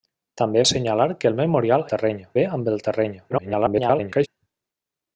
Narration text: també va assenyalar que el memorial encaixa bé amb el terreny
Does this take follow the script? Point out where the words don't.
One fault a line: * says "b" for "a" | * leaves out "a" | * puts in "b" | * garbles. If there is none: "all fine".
* leaves out "va"
* says "terreny" for "encaixa"
* garbles